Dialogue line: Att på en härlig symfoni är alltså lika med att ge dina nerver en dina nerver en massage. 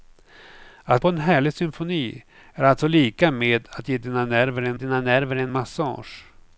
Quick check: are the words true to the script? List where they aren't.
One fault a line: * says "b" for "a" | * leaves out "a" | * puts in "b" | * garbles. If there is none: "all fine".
all fine